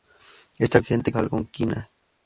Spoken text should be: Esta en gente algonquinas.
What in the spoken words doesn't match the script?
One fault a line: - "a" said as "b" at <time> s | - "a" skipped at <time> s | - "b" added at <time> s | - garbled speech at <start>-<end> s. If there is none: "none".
none